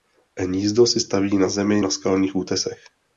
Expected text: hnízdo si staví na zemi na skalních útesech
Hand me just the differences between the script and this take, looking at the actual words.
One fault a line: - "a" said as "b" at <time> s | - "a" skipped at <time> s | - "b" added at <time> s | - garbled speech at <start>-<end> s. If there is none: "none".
none